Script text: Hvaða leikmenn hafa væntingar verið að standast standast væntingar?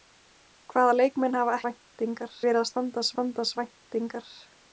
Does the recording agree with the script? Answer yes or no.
yes